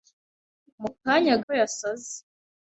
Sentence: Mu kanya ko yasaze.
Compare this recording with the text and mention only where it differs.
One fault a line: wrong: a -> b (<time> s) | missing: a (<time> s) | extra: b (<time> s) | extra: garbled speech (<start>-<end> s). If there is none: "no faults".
no faults